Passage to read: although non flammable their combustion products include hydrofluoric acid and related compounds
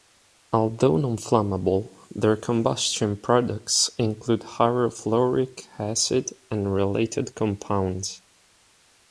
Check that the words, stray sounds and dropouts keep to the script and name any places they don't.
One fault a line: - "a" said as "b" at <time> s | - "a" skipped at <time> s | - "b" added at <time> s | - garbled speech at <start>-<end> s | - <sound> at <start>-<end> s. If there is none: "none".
none